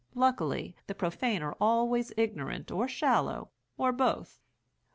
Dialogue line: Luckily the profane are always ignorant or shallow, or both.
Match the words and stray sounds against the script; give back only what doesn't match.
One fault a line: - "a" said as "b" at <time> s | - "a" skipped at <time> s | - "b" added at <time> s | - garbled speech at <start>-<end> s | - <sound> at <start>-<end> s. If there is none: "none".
none